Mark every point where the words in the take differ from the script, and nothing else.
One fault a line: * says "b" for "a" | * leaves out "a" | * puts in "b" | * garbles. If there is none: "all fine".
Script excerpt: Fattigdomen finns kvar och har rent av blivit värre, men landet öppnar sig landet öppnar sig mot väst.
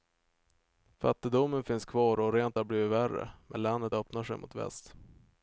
* leaves out "landet öppnar sig"